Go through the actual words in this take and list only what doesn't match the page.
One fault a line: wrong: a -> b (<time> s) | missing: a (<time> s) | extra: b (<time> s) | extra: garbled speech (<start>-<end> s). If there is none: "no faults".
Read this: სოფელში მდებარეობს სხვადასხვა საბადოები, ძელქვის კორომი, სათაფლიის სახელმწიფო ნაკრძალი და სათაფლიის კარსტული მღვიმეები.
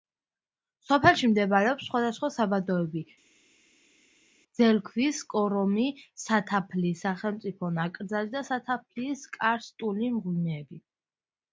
no faults